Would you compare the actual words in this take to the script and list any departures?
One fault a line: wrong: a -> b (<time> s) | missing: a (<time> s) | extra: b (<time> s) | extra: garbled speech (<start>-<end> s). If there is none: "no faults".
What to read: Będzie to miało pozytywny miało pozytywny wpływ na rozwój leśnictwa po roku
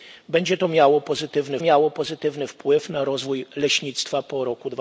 no faults